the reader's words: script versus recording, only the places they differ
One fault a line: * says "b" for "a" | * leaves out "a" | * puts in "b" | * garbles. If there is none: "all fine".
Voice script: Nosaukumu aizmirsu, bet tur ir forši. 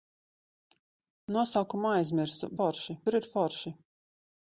* says "forši" for "bet"